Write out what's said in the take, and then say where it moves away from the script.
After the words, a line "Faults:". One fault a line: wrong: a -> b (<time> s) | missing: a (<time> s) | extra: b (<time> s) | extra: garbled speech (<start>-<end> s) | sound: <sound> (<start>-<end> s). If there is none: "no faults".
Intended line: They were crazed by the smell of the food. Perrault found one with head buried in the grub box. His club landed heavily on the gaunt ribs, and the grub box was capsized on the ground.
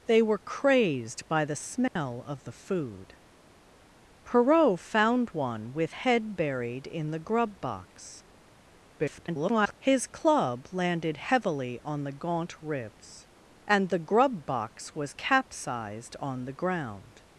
They were crazed by the smell of the food. Perrault found one with head buried in the grub box. [garbled] His club landed heavily on the gaunt ribs, and the grub box was capsized on the ground.
Faults:
sound: dropout (1.9-2.0 s)
extra: garbled speech (9.0-9.8 s)